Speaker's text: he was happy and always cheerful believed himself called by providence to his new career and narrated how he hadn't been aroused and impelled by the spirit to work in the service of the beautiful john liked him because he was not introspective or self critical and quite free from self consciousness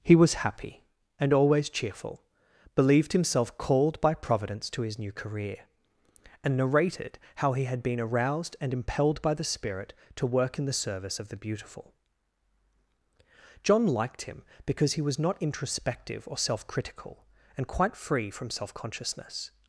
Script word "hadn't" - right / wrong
wrong